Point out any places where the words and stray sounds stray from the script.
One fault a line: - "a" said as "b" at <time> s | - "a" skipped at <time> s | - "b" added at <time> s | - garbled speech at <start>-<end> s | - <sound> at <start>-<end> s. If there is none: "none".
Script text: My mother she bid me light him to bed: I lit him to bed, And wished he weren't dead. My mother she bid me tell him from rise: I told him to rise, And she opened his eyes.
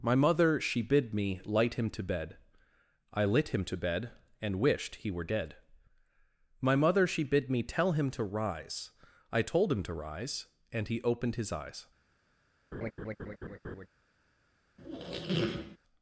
- "weren't" said as "were" at 5.1 s
- "from" said as "to" at 8.1 s
- "she" said as "he" at 10.9 s
- laugh at 12.7-13.9 s
- squeak at 14.8-15.8 s